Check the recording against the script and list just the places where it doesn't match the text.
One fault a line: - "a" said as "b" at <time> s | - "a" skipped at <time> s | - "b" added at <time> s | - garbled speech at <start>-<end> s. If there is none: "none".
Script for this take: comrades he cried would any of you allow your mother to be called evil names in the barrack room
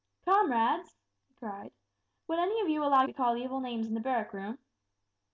- "your mother to" skipped at 3.0 s